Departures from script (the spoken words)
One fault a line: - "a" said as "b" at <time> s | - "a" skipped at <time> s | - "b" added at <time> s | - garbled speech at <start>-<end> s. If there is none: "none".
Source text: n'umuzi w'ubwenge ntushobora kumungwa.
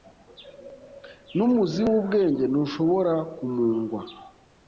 none